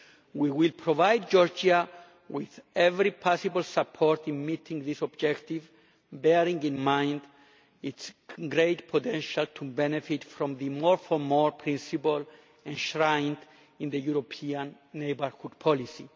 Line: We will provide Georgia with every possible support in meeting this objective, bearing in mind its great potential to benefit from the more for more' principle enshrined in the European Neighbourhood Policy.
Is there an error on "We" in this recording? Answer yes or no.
no